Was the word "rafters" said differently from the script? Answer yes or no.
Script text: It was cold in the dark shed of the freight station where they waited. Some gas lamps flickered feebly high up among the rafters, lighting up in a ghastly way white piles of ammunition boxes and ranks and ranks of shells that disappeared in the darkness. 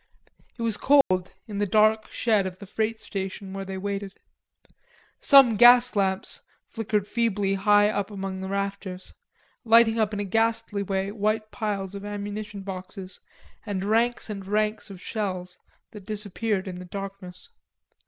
no